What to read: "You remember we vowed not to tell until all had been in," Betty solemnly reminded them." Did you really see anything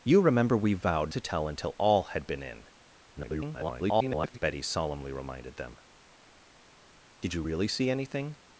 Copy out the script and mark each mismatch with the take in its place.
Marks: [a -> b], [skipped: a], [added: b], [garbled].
"You remember we vowed [skipped: not] to tell until all had been in," [garbled] Betty solemnly reminded them." Did you really see anything